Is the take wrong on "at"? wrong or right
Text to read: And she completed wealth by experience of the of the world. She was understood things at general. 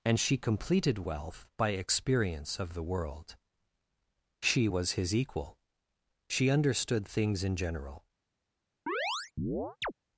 wrong